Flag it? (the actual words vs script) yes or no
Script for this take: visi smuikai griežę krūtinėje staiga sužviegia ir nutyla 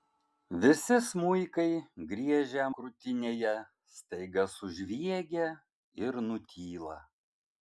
no